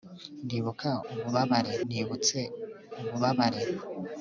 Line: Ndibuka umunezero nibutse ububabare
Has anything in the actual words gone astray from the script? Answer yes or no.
yes